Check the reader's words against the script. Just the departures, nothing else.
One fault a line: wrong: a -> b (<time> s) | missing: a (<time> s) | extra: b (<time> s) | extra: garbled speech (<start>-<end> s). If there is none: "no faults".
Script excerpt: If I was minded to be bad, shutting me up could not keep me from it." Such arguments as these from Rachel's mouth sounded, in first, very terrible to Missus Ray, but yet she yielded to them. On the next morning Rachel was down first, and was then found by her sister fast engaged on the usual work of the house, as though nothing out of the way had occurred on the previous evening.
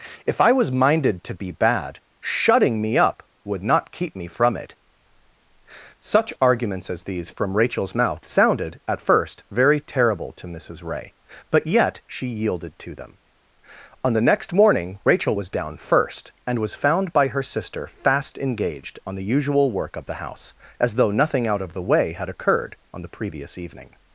wrong: could -> would (3.4 s)
wrong: in -> at (8.9 s)
missing: then (16.8 s)